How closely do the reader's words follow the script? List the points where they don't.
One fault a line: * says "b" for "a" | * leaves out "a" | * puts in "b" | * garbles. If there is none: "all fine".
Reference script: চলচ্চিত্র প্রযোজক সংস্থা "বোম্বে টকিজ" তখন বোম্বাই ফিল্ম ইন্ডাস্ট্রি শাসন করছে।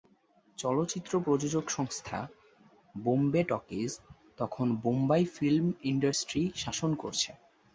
all fine